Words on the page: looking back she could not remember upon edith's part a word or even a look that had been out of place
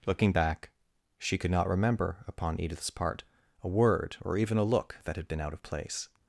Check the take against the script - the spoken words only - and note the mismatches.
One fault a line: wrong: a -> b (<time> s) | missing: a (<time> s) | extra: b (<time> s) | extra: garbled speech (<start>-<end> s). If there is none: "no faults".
no faults